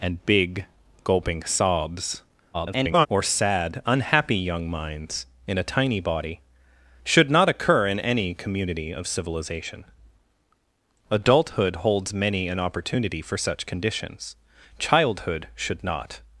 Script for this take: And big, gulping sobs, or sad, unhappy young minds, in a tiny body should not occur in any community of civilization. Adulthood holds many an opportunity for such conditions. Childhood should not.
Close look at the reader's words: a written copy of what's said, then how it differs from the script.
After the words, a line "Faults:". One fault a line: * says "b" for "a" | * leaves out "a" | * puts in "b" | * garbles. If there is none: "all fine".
And big, gulping sobs, [garbled] or sad, unhappy young minds, in a tiny body should not occur in any community of civilization. Adulthood holds many an opportunity for such conditions. Childhood should not.
Faults:
* garbles